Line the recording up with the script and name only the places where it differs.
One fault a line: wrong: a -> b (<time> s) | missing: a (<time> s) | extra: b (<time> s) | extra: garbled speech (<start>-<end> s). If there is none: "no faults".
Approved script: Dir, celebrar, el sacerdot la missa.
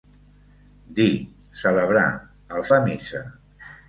missing: sacerdot (2.6 s)